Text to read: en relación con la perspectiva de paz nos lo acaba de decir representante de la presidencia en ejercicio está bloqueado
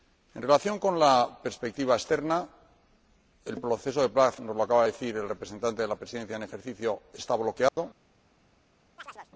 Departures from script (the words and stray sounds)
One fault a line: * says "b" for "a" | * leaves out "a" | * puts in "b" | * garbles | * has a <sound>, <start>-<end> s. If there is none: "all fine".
* puts in "externa el proceso"
* puts in "el"
* has a dropout, 7.7-7.8 s
* has a chirp, 9.0-9.3 s